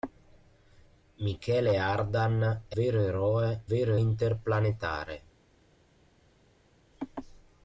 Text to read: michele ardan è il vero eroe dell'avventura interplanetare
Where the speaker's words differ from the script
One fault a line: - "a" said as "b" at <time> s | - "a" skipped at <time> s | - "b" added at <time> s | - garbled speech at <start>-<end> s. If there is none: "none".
- "il" skipped at 2.8 s
- "dell'avventura" said as "vero" at 3.7 s